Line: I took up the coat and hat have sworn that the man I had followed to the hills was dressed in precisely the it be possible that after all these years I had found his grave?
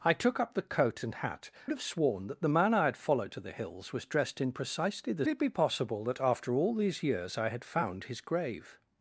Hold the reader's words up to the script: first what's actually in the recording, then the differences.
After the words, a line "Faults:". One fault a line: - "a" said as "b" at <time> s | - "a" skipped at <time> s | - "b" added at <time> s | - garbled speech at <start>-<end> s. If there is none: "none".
I took up the coat and hat have sworn that the man I had followed to the hills was dressed in precisely the it be possible that after all these years I had found his grave?
Faults:
none